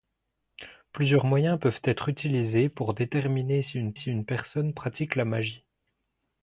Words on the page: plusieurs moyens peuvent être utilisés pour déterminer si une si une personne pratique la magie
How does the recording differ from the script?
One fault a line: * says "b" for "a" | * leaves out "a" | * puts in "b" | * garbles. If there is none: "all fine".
all fine